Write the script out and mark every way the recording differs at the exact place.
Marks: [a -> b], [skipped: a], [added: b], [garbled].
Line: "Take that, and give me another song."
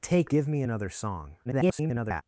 "Take [skipped: that, and] give me another song." [garbled]